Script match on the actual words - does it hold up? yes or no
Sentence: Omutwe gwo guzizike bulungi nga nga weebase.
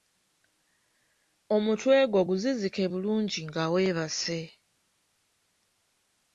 no